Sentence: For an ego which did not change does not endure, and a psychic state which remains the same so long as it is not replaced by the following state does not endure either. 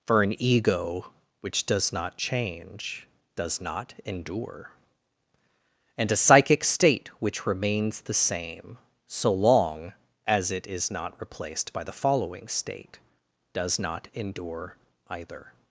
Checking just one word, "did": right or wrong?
wrong